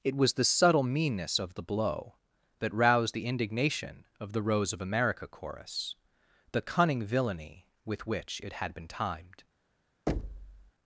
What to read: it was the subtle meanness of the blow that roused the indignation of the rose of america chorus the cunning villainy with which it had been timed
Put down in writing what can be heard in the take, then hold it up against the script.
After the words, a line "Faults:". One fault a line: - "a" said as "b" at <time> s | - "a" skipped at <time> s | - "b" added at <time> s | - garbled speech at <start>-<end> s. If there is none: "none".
it was the subtle meanness of the blow that roused the indignation of the rose of america chorus the cunning villainy with which it had been timed
Faults:
none